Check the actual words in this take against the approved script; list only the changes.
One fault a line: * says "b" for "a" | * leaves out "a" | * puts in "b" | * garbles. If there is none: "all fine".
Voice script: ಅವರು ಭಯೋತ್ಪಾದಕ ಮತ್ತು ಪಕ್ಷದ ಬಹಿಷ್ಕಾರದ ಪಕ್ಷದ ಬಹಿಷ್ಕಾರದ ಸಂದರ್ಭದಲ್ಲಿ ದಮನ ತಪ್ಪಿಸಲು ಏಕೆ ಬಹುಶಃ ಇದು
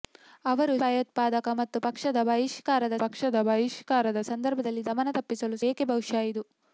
all fine